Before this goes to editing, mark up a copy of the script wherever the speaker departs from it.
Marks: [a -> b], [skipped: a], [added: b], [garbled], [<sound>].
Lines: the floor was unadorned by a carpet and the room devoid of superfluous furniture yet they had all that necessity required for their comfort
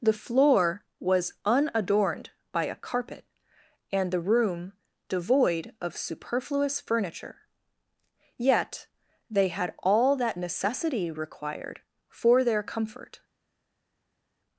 the floor was unadorned by a carpet and the room devoid of superfluous furniture yet they had all that necessity required for their comfort